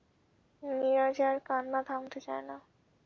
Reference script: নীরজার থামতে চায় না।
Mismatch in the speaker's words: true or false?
true